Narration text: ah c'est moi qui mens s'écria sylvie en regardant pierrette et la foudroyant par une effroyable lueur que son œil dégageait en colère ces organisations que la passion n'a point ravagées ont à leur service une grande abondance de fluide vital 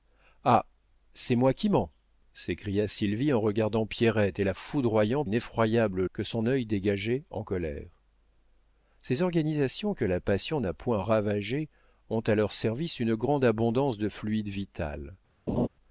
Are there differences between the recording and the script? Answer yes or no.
yes